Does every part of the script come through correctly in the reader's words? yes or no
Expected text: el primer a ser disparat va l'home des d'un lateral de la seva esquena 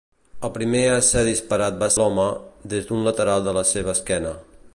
yes